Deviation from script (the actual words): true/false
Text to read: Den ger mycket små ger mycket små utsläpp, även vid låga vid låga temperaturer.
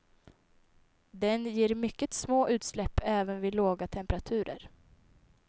true